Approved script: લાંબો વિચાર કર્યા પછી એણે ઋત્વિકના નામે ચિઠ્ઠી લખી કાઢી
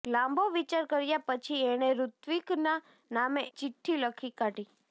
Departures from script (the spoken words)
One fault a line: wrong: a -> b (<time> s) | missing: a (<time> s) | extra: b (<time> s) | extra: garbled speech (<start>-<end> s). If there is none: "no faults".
no faults